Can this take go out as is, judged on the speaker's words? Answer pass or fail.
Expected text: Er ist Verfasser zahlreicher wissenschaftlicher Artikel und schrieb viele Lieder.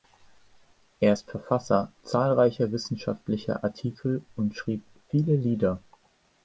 pass